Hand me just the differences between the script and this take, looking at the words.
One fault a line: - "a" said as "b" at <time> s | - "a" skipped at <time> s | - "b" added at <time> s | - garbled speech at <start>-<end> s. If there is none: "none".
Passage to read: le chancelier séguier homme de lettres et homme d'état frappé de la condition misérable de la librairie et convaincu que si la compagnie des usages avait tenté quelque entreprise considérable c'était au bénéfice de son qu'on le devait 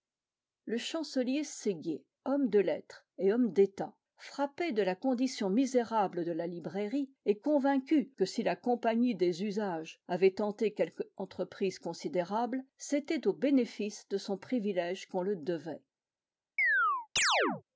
- "privilège" added at 14.4 s